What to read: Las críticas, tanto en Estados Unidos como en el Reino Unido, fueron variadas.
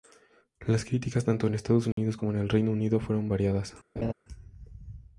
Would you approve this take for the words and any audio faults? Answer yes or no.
no